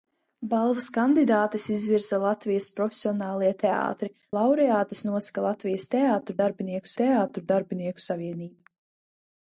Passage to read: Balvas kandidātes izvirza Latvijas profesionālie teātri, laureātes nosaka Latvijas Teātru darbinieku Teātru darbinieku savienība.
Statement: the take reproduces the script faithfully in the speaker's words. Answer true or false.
true